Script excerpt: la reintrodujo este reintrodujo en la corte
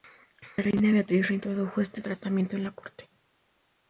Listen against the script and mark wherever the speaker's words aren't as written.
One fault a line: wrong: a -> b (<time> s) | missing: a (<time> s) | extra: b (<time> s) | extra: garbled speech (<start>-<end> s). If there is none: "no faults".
extra: reina beatriz (0.6 s)
wrong: reintrodujo -> tratamiento (2.0 s)